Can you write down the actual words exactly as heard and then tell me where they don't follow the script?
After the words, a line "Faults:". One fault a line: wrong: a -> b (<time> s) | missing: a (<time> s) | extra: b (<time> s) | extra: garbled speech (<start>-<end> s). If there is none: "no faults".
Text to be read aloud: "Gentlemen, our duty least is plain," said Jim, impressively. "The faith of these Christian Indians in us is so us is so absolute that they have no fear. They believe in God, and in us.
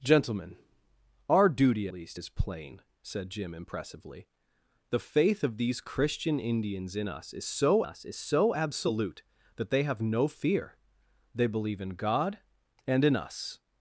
"Gentlemen, our duty least is plain," said Jim, impressively. "The faith of these Christian Indians in us is so us is so absolute that they have no fear. They believe in God, and in us.
Faults:
no faults